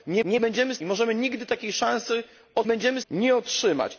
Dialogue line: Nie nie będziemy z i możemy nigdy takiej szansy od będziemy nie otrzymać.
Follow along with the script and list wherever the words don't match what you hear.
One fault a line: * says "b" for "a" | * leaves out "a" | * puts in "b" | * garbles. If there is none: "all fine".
all fine